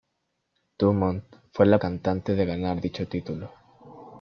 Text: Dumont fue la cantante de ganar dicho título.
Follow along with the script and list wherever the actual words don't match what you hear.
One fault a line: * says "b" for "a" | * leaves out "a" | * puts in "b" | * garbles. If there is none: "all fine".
all fine